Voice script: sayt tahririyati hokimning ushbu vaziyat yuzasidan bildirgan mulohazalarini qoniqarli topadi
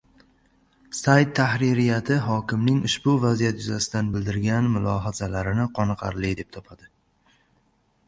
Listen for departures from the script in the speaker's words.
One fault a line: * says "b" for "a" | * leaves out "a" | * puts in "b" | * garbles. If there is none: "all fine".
* puts in "deb"